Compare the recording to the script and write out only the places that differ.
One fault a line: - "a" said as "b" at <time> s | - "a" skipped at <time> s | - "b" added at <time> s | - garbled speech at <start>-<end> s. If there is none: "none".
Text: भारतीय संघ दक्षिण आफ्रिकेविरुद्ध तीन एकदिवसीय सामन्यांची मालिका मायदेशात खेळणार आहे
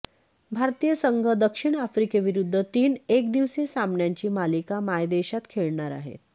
none